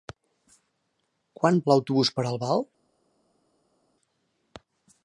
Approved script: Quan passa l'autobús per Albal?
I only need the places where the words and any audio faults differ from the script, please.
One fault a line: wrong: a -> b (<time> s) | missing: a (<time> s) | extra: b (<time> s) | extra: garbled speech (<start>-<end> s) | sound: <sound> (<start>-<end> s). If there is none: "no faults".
missing: passa (1.6 s)